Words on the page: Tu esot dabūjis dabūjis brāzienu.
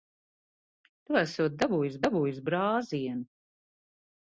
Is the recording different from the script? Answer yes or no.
no